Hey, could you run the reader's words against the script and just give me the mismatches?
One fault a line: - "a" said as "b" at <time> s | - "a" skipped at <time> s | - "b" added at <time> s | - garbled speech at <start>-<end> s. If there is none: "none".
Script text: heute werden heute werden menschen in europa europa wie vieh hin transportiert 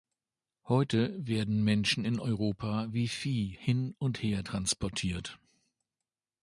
- "heute werden" skipped at 1.6 s
- "europa" skipped at 2.9 s
- "und her" added at 4.0 s